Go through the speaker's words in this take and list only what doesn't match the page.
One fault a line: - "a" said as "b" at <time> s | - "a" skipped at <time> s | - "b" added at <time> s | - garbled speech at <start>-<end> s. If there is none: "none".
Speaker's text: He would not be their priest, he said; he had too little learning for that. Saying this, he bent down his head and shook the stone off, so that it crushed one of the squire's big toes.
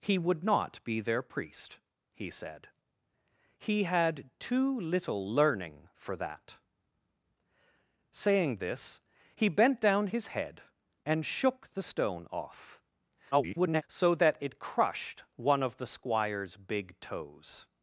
- garbled speech at 13.3-13.8 s